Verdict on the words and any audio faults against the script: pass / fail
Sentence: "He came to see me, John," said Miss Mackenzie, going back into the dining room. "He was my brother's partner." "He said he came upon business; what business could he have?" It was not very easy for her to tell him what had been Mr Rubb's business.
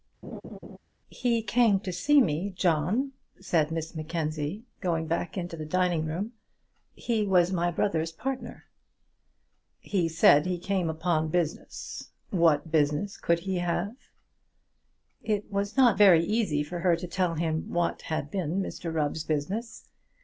fail